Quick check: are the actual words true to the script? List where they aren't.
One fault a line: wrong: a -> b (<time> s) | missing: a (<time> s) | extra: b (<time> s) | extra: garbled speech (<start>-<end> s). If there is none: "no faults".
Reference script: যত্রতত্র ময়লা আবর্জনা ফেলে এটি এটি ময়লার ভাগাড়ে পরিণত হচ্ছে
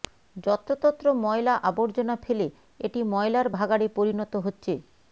missing: এটি (3.0 s)